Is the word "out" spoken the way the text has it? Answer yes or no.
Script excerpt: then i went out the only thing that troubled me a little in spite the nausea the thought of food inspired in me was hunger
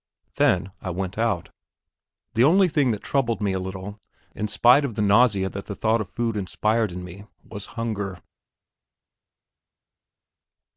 yes